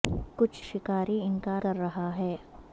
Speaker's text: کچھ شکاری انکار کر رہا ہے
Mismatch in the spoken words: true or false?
false